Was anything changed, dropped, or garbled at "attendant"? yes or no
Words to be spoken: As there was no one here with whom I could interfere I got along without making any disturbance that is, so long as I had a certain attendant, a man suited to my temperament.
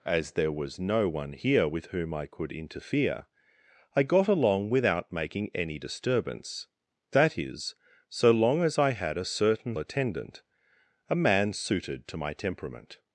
no